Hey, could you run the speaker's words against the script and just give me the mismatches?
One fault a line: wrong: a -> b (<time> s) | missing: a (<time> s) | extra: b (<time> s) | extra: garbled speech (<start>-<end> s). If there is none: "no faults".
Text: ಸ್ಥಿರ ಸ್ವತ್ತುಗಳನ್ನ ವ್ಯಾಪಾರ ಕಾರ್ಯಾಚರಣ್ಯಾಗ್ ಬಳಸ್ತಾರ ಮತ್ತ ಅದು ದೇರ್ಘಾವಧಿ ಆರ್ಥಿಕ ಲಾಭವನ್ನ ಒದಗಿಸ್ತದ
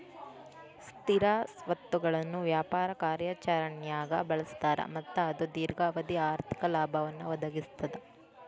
no faults